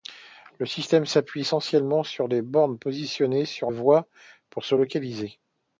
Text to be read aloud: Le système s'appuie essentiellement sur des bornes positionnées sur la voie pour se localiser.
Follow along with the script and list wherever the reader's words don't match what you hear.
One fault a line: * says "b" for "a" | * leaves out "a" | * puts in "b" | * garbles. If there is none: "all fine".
* leaves out "la"